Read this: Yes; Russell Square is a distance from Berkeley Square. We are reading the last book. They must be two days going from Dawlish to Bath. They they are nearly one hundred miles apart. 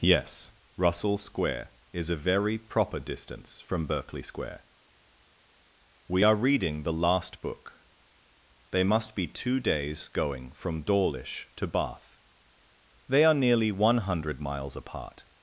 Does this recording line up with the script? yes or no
no